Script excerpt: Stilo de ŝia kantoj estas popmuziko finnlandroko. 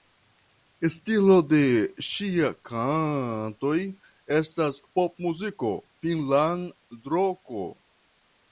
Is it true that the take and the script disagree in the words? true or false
false